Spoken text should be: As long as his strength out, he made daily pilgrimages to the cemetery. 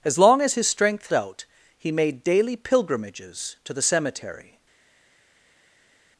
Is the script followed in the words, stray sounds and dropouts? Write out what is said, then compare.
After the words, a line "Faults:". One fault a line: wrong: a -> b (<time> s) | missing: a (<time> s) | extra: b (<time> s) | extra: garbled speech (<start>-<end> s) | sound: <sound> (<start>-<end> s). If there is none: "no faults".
As long as his strength out, he made daily pilgrimages to the cemetery.
Faults:
no faults